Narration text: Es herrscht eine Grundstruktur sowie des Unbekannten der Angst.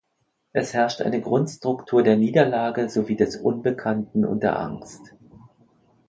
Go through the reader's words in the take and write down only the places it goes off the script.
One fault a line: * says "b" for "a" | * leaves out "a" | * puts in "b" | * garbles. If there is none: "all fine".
* puts in "der Niederlage"
* puts in "und"